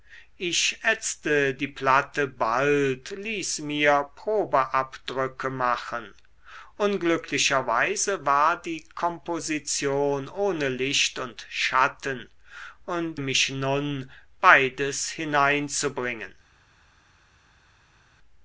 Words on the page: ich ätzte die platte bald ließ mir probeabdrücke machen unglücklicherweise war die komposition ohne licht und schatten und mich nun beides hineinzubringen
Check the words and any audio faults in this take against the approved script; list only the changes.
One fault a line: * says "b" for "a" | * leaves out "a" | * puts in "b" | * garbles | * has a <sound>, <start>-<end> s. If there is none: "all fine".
all fine